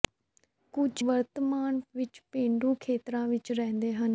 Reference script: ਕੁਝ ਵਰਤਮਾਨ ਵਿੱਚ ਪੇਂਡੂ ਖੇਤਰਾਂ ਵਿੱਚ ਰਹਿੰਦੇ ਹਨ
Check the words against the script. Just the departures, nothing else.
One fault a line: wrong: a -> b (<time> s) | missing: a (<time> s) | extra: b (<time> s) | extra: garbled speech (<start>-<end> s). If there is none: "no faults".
no faults